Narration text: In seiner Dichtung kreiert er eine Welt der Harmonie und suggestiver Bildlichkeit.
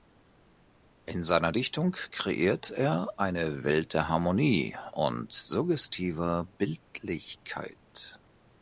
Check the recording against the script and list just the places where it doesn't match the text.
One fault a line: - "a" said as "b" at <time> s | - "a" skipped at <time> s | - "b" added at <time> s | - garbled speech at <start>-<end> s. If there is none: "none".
none